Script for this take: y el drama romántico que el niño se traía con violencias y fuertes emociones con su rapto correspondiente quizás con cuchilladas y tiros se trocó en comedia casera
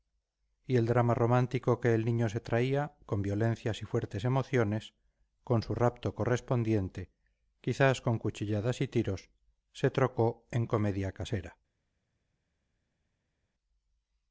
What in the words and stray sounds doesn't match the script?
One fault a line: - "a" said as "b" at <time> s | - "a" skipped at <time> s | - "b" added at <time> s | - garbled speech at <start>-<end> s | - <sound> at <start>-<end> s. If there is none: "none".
none